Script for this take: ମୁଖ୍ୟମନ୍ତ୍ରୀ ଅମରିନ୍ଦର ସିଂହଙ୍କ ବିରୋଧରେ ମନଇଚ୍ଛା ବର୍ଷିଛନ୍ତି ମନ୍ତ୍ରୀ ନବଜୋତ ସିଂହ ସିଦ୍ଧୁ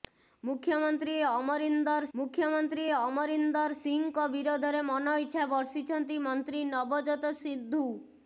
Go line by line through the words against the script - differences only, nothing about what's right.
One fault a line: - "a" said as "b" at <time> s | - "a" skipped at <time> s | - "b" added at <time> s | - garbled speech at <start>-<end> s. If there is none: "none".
- "ମୁଖ୍ୟମନ୍ତ୍ରୀ ଅମରିନ୍ଦର" added at 2.1 s
- "ସିଂହ" skipped at 7.3 s